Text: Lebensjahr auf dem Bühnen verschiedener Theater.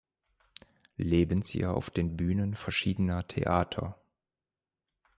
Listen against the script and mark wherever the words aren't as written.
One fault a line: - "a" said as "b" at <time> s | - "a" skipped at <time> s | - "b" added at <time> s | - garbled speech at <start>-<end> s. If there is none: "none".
- "dem" said as "den" at 1.9 s